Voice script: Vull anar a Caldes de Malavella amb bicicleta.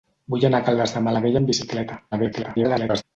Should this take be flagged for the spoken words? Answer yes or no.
yes